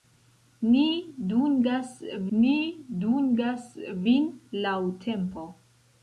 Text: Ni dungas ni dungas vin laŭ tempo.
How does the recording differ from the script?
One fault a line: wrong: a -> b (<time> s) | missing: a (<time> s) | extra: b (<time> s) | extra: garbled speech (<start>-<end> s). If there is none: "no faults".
no faults